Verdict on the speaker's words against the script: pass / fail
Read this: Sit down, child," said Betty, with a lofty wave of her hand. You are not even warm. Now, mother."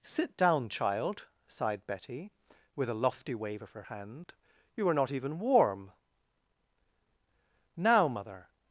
fail